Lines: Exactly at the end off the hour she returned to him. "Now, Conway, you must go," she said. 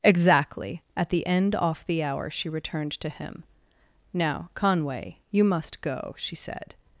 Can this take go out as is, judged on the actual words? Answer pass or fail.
pass